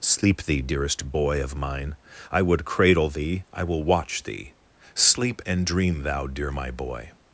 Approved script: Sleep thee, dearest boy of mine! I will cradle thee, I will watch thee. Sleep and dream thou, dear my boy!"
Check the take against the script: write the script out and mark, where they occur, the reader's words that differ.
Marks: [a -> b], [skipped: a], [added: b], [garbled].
Sleep thee, dearest boy of mine! I [will -> would] cradle thee, I will watch thee. Sleep and dream thou, dear my boy!"